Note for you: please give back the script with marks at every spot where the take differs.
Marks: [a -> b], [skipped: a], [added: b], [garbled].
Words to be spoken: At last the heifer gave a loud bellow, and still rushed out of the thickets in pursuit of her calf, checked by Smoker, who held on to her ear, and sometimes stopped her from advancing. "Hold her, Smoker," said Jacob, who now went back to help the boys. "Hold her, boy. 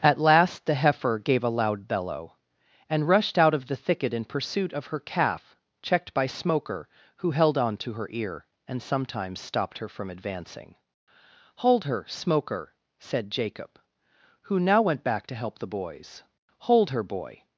At last the heifer gave a loud bellow, and [skipped: still] rushed out of the [thickets -> thicket] in pursuit of her calf, checked by Smoker, who held on to her ear, and sometimes stopped her from advancing. "Hold her, Smoker," said Jacob, who now went back to help the boys. "Hold her, boy.